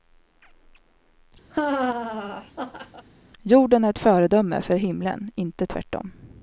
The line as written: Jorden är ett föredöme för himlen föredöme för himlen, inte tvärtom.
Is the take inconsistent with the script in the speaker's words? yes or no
yes